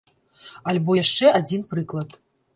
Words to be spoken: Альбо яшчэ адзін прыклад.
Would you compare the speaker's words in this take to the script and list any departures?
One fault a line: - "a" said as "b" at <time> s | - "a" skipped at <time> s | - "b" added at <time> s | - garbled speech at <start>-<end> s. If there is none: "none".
none